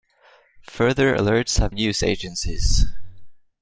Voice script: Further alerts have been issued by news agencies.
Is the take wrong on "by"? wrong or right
wrong